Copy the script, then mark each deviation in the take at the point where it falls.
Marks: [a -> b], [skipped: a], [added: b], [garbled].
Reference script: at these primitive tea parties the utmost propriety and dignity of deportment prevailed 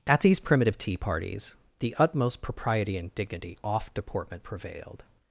at these primitive tea parties the utmost propriety and dignity [of -> off] deportment prevailed